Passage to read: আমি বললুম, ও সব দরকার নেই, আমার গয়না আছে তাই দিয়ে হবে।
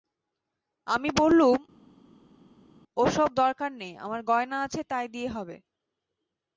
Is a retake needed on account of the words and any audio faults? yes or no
no